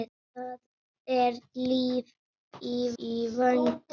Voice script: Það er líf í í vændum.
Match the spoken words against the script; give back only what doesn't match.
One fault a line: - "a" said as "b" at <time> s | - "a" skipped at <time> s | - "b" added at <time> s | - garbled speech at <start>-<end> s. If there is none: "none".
none